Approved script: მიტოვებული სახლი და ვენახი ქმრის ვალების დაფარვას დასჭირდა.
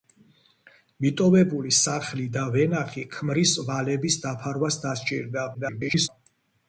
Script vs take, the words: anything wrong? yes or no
yes